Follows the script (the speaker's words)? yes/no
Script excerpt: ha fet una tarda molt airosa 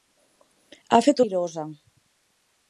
no